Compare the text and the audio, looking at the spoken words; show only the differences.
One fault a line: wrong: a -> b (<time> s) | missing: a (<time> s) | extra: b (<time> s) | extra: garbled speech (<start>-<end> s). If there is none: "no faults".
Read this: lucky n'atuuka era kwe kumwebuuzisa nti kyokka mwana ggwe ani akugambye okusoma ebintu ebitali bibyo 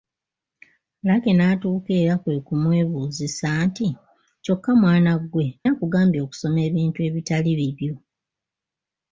missing: ani (5.5 s)